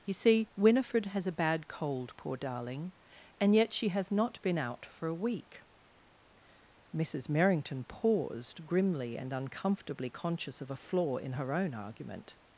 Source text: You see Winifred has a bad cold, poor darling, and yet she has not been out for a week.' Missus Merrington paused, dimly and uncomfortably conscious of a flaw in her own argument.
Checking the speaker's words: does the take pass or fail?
fail